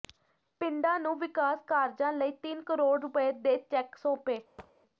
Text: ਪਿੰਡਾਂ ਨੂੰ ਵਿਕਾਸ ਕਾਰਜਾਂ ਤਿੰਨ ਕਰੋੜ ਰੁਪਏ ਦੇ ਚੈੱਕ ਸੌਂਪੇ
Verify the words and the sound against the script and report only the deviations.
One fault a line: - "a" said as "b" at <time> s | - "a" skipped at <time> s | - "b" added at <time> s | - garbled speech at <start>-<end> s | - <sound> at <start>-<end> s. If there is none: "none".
- "ਲਈ" added at 2.1 s
- thud at 4.6-4.7 s